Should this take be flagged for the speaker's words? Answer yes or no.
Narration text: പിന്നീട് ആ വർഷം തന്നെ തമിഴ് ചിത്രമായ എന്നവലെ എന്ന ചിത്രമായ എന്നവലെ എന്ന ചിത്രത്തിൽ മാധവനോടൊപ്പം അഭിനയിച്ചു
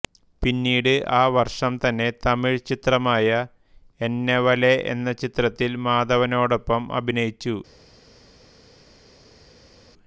yes